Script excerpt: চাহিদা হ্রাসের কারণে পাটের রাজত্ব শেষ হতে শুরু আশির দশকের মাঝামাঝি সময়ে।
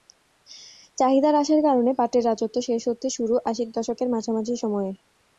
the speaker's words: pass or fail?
pass